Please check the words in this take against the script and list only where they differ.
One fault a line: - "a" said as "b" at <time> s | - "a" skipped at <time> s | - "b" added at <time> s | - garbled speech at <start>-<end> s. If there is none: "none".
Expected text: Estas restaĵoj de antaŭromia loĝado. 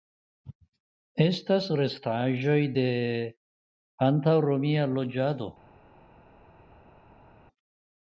none